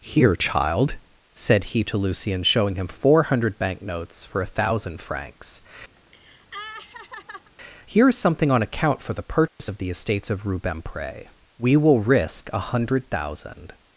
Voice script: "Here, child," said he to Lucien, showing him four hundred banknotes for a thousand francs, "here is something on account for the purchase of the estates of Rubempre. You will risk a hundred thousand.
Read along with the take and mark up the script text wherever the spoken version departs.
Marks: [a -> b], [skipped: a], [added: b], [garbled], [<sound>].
"Here, child," said he to Lucien, showing him four hundred banknotes for a thousand francs, [laugh] "here is something on account for the purchase [dropout] of the estates of Rubempre. [You -> We] will risk a hundred thousand.